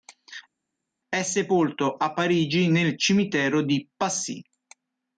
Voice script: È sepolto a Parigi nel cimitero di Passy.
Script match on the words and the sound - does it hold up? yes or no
yes